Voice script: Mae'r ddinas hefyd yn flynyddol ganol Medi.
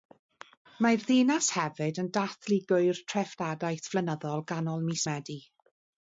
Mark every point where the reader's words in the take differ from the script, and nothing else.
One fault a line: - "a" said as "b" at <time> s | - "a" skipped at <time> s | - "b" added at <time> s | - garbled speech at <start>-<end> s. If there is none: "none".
- "dathlu Gŵyl Treftadaeth" added at 2.2 s
- "mis" added at 4.9 s